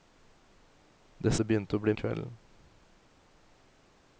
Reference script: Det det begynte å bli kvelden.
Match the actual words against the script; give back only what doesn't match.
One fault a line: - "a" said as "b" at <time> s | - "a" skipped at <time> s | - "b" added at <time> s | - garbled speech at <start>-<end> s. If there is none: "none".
none